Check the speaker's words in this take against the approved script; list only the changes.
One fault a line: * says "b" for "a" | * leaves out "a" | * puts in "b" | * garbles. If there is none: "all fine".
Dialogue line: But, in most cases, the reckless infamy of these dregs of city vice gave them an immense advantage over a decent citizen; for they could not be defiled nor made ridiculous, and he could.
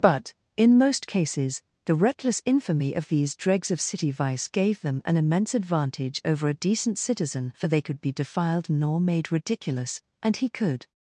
* leaves out "not"